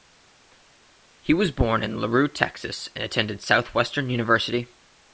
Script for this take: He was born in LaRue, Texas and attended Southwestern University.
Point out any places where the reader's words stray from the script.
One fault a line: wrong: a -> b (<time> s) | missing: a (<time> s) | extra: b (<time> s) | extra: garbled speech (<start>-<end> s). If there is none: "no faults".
no faults